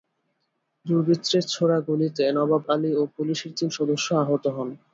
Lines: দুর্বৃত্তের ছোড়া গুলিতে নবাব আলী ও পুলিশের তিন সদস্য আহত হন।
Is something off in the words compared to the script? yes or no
no